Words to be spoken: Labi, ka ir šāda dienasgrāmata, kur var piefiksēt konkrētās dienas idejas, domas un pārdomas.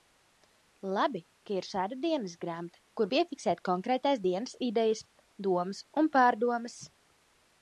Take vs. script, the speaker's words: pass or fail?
fail